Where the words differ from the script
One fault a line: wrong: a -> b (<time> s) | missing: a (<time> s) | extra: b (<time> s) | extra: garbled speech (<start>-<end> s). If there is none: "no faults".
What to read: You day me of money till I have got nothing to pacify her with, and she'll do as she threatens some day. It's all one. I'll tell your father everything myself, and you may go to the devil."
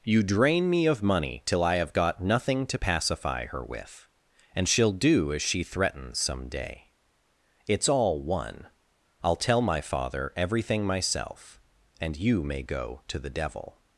wrong: day -> drain (0.2 s)
wrong: your -> my (9.6 s)